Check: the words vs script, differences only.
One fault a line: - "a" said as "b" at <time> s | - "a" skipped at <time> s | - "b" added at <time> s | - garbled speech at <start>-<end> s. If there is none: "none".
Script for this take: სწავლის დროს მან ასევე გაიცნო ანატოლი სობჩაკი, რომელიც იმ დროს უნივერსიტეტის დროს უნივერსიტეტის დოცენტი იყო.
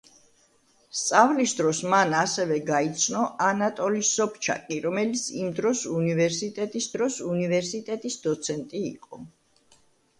none